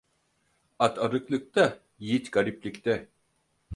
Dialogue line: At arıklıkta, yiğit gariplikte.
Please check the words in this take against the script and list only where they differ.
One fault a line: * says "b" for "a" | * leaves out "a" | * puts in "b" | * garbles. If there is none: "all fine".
all fine